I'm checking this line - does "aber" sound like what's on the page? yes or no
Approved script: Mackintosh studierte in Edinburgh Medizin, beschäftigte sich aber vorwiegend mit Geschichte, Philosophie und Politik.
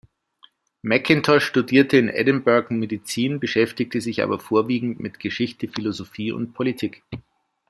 yes